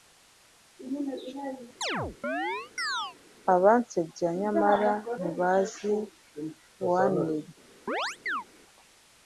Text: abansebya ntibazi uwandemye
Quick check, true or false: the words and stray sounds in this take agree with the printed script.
false